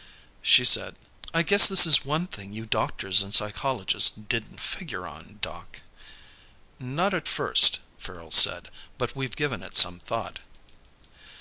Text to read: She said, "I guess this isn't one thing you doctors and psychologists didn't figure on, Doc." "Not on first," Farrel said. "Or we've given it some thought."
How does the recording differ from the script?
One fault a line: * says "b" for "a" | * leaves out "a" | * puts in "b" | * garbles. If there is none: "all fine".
* says "is" for "isn't"
* says "at" for "on"
* says "But" for "Or"